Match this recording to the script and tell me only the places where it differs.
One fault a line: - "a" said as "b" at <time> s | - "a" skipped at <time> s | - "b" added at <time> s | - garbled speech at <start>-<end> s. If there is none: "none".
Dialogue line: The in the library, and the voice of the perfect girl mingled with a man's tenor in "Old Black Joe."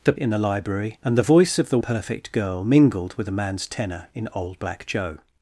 none